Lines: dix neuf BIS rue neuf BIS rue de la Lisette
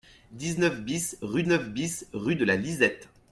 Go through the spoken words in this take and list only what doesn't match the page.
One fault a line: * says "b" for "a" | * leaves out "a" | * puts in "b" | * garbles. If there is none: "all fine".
all fine